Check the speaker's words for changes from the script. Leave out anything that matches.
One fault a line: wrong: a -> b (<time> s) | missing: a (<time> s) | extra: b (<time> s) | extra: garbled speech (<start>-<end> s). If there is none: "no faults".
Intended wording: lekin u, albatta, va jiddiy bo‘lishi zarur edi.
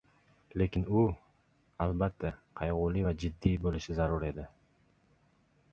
extra: qayg‘uli (2.6 s)